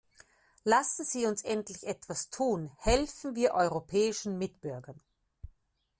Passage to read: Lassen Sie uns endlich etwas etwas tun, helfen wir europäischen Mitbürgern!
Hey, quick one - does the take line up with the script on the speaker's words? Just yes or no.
no